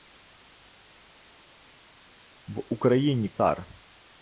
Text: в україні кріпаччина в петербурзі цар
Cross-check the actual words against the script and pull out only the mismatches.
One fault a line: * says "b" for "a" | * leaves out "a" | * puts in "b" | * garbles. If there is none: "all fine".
* leaves out "кріпаччина в петербурзі"